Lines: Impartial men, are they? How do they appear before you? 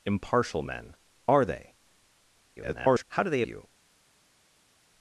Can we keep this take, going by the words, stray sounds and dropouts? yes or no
no